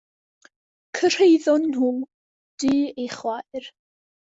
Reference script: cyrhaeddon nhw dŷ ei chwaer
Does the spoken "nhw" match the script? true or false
true